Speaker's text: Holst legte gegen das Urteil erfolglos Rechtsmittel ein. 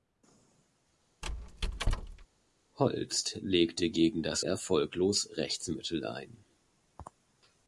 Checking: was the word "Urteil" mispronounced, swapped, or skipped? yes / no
yes